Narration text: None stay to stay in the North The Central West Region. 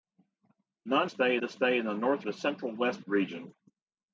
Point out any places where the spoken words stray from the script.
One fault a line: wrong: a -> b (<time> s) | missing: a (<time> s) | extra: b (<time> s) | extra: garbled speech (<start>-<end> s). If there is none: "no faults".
no faults